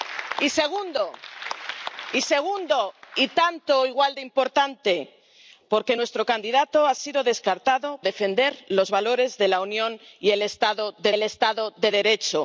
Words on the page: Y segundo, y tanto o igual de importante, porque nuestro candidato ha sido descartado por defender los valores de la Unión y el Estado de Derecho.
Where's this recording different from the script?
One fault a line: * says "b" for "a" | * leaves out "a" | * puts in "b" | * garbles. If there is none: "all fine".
* leaves out "por"
* puts in "el Estado de"